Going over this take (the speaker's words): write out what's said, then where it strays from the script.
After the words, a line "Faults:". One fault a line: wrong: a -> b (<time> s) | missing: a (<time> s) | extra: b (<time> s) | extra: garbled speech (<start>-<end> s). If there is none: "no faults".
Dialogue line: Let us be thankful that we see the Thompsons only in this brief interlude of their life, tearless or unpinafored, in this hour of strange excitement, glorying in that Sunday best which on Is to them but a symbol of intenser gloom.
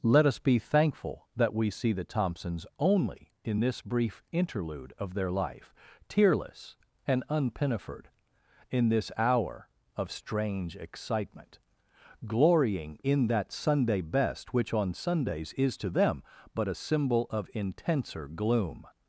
Let us be thankful that we see the Thompsons only in this brief interlude of their life, tearless and unpinafored, in this hour of strange excitement, glorying in that Sunday best which on Sundays is to them but a symbol of intenser gloom.
Faults:
wrong: or -> and (7.1 s)
extra: Sundays (14.9 s)